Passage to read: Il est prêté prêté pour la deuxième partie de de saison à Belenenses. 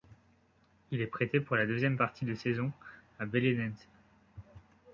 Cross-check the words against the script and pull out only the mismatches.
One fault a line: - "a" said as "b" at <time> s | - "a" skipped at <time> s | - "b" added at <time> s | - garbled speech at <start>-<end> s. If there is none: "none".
- "prêté" skipped at 1.4 s
- "de" skipped at 2.3 s